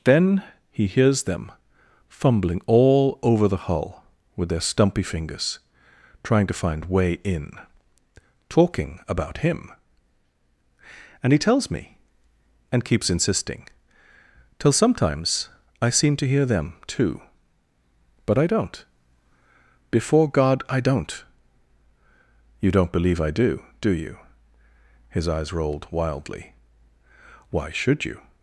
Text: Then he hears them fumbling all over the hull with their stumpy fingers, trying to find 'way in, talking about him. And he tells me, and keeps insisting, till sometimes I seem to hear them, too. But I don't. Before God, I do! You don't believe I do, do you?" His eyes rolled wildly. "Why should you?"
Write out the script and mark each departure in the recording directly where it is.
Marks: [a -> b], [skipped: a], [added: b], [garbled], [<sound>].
Then he hears them fumbling all over the hull with their stumpy fingers, trying to find 'way in, talking about him. And he tells me, and keeps insisting, till sometimes I seem to hear them, too. But I don't. Before God, I [do! -> don't] You don't believe I do, do you?" His eyes rolled wildly. "Why should you?"